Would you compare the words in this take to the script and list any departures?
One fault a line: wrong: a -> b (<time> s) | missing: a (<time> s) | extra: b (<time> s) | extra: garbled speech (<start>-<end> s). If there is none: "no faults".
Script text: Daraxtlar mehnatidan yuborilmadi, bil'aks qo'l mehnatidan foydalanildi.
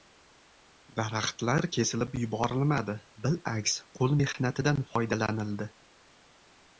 wrong: mehnatidan -> kesilib (1.7 s)